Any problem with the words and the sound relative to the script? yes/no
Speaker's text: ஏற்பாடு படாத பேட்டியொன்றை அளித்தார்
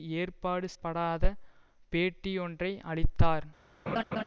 yes